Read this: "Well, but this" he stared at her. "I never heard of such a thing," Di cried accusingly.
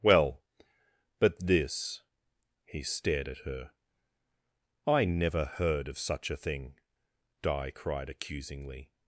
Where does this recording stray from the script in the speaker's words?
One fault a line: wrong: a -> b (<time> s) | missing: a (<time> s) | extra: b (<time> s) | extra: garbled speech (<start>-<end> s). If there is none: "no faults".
no faults